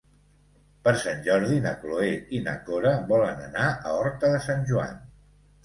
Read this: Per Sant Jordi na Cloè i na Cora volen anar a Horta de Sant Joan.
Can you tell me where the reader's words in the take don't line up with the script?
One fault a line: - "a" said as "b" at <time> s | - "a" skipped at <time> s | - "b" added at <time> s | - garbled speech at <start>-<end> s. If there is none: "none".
none